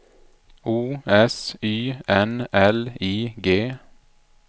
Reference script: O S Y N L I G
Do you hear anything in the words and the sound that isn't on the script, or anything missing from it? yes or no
no